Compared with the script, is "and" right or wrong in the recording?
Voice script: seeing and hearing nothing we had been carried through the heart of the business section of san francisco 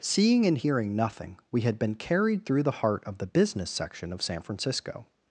right